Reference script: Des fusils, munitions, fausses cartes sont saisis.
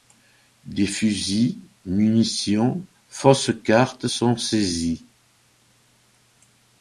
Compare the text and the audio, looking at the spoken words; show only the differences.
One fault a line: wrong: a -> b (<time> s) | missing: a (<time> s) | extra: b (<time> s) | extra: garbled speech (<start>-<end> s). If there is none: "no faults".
no faults